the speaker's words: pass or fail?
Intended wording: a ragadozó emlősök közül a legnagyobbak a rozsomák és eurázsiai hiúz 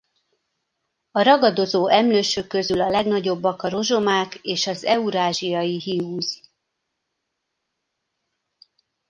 fail